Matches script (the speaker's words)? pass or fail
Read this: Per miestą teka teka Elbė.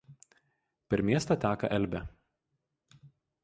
fail